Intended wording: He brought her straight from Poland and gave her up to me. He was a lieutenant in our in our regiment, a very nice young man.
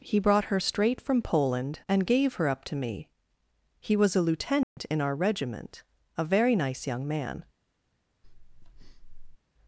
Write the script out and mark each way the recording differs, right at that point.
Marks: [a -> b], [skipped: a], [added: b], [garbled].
He brought her straight from Poland and gave her up to me. He was a lieutenant in our [skipped: in our] regiment, a very nice young man.